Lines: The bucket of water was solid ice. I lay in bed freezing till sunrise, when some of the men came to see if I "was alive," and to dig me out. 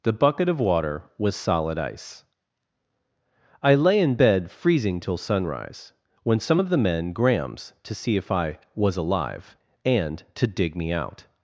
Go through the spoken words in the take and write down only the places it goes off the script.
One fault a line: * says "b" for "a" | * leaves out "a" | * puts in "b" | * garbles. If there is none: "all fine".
* says "grams" for "came"